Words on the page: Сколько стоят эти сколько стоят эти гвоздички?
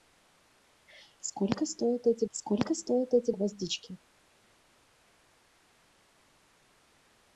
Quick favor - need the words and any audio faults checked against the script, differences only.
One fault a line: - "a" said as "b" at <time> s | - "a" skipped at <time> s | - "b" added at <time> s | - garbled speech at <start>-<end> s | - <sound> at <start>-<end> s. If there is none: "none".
none